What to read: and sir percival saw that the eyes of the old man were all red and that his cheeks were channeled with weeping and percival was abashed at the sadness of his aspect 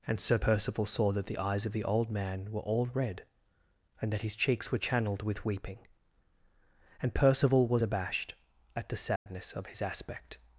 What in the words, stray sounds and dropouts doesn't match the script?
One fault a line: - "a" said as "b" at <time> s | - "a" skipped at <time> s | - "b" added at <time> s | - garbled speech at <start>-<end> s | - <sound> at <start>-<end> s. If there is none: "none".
- dropout at 9.2-9.3 s